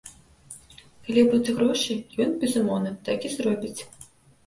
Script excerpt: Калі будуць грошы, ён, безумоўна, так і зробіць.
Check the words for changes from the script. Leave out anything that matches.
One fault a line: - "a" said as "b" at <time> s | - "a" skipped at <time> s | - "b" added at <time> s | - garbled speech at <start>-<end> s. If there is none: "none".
none